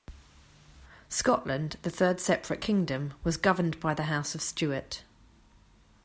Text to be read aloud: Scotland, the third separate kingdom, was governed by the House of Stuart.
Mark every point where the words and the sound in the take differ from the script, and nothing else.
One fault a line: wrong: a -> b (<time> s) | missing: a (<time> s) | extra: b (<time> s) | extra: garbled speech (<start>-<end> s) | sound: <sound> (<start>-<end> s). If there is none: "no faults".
no faults